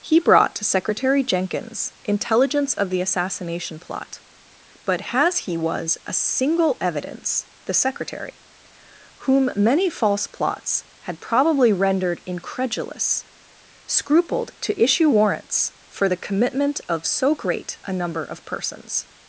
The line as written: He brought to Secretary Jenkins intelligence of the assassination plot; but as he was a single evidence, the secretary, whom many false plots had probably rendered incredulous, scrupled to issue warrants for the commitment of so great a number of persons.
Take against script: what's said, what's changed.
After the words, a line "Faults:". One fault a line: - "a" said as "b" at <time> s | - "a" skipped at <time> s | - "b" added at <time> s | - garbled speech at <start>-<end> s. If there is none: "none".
He brought to Secretary Jenkins intelligence of the assassination plot; but has he was a single evidence, the secretary, whom many false plots had probably rendered incredulous, scrupled to issue warrants for the commitment of so great a number of persons.
Faults:
- "as" said as "has" at 5.1 s